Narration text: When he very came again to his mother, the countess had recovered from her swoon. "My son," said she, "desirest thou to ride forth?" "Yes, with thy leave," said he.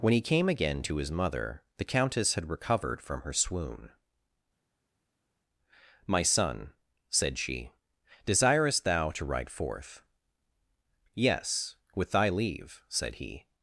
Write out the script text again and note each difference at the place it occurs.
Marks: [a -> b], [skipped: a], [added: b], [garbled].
When he [skipped: very] came again to his mother, the countess had recovered from her swoon. "My son," said she, "desirest thou to ride forth?" "Yes, with thy leave," said he.